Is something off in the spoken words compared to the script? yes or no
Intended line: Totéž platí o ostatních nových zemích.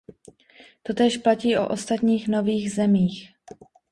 no